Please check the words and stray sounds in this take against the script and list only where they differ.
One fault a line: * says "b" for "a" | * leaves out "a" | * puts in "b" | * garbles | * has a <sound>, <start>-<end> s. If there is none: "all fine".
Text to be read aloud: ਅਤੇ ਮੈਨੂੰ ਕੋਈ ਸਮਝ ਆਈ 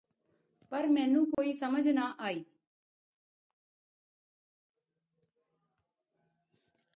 * says "ਪਰ" for "ਅਤੇ"
* has a dropout, 1.3-1.4 s
* puts in "ਨਾ"